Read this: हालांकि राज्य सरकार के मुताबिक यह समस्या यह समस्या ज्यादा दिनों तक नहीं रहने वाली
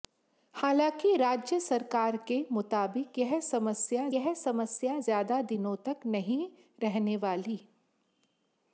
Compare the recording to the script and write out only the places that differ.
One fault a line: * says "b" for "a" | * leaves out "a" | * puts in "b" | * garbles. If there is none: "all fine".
all fine